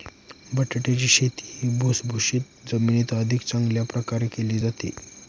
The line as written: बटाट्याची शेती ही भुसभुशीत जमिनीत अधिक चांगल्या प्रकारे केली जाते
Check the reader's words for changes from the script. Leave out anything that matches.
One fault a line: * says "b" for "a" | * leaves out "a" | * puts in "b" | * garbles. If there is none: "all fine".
all fine